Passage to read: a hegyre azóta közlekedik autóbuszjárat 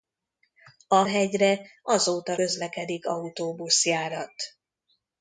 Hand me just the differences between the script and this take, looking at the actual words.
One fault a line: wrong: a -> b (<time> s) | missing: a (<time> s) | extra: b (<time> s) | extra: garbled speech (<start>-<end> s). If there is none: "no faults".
no faults